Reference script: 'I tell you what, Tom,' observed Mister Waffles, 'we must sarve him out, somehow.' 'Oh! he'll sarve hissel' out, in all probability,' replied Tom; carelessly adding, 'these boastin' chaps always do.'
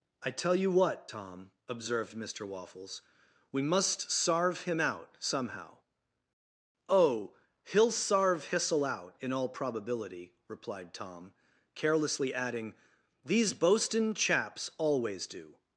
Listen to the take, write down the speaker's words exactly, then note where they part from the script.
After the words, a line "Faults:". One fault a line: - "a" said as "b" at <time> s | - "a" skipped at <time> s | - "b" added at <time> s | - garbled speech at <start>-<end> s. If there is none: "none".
'I tell you what, Tom,' observed Mister Waffles, 'we must sarve him out, somehow.' 'Oh! he'll sarve hissel' out, in all probability,' replied Tom; carelessly adding, 'these boastin' chaps always do.'
Faults:
none